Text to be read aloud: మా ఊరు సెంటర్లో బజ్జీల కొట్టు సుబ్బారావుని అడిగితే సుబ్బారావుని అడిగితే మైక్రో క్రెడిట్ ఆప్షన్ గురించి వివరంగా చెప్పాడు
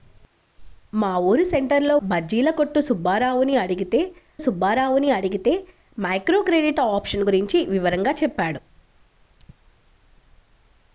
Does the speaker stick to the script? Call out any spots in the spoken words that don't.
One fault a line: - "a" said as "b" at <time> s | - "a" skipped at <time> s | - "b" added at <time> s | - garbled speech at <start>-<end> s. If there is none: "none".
none